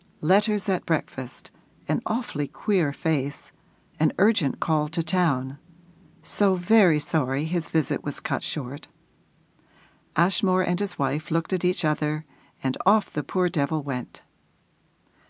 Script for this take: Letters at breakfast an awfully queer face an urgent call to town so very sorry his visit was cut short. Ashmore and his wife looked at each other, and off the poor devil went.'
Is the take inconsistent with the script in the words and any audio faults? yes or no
no